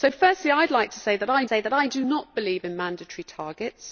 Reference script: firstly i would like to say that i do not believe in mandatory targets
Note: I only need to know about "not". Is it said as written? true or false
true